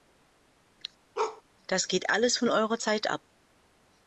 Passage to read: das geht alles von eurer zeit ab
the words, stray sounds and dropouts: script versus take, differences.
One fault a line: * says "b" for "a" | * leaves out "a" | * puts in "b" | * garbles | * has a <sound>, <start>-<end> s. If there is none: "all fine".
* has a bark, 1.1-1.4 s